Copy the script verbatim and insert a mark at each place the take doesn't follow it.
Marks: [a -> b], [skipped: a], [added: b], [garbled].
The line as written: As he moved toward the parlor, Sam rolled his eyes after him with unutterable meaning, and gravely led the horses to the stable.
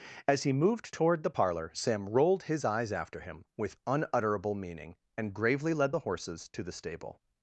As he moved toward the parlor, Sam rolled his eyes after him with unutterable meaning, and gravely led the horses to the stable.